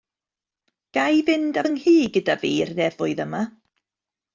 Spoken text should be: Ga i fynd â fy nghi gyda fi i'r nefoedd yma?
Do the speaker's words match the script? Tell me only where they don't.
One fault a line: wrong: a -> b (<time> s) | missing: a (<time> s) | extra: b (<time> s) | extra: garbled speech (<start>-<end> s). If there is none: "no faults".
no faults